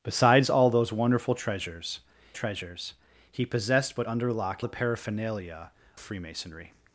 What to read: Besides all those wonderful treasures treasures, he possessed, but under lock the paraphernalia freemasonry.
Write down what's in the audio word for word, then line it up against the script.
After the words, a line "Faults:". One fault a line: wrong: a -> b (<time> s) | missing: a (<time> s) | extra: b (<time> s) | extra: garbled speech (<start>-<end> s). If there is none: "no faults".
Besides all those wonderful treasures treasures, he possessed, but under lock the paraphernalia freemasonry.
Faults:
no faults